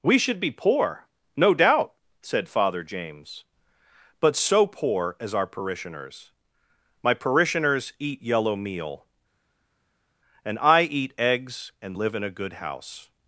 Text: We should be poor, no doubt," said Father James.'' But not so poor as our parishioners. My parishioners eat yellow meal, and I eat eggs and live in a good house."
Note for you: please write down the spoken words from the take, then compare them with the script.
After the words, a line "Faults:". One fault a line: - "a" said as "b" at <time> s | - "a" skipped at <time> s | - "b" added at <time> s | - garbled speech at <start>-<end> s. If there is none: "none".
We should be poor, no doubt," said Father James.'' But so poor as our parishioners. My parishioners eat yellow meal, and I eat eggs and live in a good house."
Faults:
- "not" skipped at 4.3 s